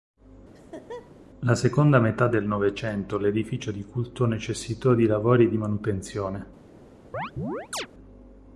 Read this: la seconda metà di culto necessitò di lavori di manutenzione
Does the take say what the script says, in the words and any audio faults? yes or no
no